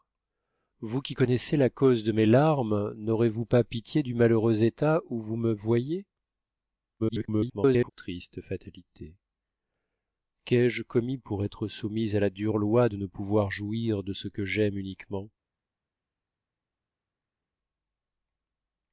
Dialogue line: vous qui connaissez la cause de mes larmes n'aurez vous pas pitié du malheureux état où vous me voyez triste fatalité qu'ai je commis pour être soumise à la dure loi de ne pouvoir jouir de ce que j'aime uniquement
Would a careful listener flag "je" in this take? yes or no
no